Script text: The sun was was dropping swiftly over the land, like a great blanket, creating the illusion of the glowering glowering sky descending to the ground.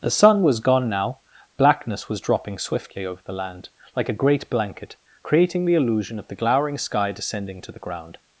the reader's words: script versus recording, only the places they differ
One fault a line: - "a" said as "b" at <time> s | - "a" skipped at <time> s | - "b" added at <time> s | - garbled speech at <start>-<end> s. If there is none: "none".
- "gone now Blackness" added at 0.6 s
- "glowering" skipped at 6.8 s